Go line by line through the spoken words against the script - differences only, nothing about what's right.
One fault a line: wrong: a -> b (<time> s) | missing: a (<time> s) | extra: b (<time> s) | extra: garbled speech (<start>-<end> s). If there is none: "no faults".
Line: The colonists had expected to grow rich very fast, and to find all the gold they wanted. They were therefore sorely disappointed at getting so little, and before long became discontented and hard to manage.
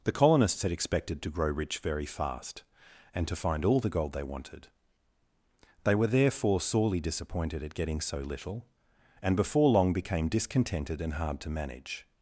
no faults